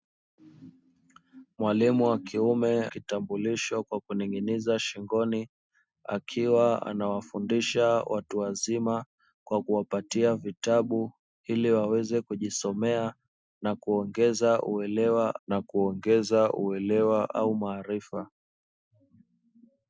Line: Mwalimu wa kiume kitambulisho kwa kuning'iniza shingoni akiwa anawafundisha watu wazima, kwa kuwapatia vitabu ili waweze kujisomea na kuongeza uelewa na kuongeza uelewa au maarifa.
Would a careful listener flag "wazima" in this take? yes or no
no